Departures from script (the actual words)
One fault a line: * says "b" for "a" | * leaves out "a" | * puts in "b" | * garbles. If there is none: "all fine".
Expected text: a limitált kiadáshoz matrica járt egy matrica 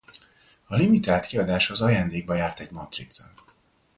* says "ajándékba" for "matrica"